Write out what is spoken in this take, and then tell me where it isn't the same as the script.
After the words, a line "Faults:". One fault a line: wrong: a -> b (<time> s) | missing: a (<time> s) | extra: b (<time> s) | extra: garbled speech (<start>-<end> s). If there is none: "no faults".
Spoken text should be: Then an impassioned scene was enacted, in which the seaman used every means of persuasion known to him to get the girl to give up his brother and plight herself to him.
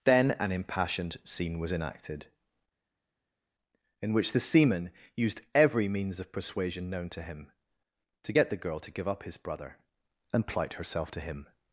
Then an impassioned scene was enacted, in which the seaman used every means of persuasion known to him to get the girl to give up his brother and plight herself to him.
Faults:
no faults